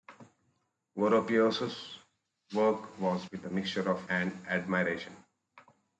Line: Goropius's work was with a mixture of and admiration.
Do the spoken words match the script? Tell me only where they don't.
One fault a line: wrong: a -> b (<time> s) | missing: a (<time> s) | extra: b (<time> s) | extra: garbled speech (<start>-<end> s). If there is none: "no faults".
no faults